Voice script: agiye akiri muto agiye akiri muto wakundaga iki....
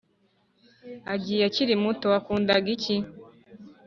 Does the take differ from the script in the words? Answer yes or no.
yes